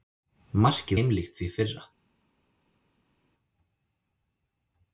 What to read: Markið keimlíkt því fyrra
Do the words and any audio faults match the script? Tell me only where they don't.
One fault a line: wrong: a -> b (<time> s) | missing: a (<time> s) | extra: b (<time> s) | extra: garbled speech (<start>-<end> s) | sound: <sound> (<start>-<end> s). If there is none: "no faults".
no faults